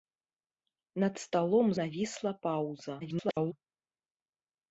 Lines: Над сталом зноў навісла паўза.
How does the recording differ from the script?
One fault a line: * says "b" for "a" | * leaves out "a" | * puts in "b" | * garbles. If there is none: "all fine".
* leaves out "зноў"
* garbles